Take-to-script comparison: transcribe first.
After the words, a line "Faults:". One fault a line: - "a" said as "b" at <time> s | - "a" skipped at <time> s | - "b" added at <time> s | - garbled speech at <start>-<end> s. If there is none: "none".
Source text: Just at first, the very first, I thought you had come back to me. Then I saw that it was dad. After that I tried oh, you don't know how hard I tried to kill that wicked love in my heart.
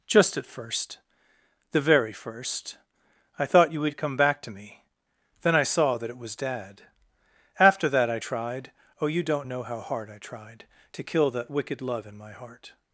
Just at first, the very first, I thought you would come back to me. Then I saw that it was dad. After that I tried oh, you don't know how hard I tried to kill that wicked love in my heart.
Faults:
- "had" said as "would" at 3.8 s